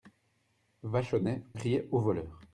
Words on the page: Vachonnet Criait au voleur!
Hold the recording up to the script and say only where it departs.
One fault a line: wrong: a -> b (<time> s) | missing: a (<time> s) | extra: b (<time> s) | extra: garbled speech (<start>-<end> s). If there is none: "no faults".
no faults